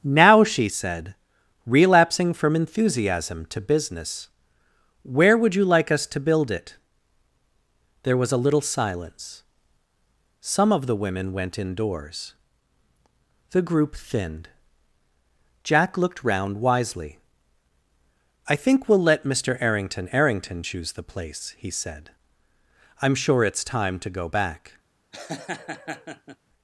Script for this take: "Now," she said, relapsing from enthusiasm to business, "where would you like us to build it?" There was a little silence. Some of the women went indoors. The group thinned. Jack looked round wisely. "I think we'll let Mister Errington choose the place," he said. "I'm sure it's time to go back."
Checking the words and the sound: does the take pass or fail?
fail